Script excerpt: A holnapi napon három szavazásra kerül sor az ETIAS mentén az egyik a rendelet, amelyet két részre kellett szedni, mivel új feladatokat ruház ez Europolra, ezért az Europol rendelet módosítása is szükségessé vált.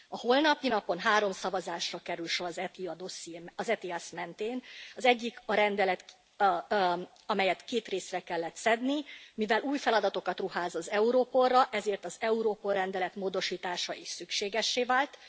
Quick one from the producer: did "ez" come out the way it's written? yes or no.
no